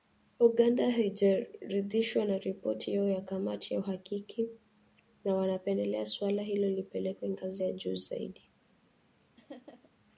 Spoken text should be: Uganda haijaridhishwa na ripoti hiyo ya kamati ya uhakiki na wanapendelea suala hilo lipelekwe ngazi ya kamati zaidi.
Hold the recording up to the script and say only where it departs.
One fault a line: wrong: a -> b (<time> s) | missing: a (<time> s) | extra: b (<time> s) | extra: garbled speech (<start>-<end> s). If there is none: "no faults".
wrong: kamati -> juu (7.7 s)